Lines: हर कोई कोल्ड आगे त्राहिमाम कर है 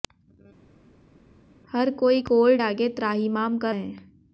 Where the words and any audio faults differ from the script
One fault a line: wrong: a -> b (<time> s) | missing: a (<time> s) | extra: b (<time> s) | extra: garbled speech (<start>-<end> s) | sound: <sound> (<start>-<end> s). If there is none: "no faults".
no faults